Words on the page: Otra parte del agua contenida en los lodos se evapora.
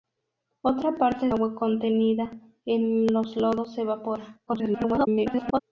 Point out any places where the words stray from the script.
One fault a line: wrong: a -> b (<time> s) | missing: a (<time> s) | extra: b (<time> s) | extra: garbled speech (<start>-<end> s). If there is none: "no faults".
missing: del (1.3 s)
extra: garbled speech (4.5-5.6 s)